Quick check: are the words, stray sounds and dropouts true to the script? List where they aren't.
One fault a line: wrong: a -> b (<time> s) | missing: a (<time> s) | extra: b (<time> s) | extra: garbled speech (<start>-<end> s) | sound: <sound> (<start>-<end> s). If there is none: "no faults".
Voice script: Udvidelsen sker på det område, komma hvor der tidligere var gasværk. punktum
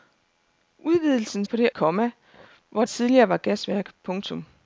missing: sker (1.4 s)
missing: område (1.7 s)
missing: der (2.8 s)